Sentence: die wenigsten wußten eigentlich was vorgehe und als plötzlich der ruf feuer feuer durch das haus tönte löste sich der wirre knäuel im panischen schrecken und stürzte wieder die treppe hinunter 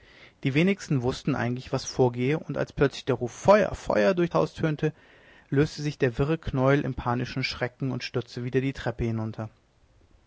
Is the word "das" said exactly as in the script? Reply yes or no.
no